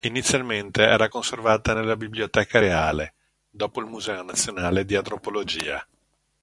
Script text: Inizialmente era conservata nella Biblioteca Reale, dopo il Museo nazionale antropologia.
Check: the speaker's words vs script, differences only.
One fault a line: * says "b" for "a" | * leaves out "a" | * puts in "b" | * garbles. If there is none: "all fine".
* puts in "di"